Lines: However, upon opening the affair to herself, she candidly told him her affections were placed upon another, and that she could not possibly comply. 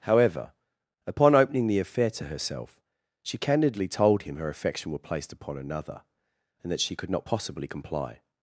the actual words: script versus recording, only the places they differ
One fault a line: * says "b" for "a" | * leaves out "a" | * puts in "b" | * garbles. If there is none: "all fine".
* says "affection" for "affections"